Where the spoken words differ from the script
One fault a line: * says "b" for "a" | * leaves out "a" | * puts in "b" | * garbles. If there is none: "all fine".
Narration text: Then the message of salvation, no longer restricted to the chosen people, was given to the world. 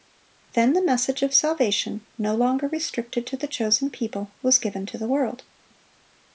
all fine